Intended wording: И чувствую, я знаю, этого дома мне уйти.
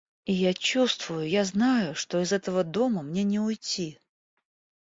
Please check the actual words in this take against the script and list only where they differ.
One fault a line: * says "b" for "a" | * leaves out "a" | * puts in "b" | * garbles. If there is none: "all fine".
* puts in "я"
* puts in "что из"
* puts in "не"